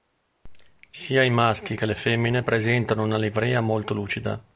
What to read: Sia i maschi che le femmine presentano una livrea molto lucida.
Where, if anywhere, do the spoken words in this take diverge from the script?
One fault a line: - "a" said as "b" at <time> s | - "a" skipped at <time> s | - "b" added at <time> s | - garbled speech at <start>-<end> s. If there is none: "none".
none